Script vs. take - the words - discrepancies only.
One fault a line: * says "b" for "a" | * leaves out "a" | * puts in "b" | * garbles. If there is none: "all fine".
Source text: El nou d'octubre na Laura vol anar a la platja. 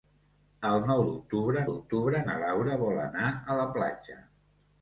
* puts in "d'octubre"